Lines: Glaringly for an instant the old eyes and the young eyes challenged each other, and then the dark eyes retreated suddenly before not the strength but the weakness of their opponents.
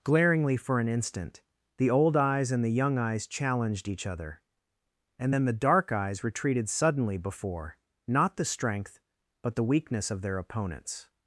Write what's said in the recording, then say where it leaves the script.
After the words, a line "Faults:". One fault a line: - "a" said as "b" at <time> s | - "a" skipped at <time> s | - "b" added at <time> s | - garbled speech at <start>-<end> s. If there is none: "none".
Glaringly for an instant the old eyes and the young eyes challenged each other, and then the dark eyes retreated suddenly before not the strength but the weakness of their opponents.
Faults:
none